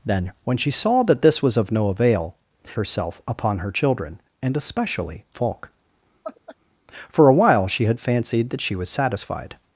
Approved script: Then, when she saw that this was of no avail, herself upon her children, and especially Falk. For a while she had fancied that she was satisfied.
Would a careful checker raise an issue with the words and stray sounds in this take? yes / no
yes